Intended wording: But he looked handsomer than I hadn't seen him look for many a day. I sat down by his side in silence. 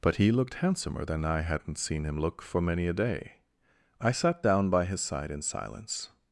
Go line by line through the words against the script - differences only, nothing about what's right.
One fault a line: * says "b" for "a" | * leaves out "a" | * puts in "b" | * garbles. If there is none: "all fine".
all fine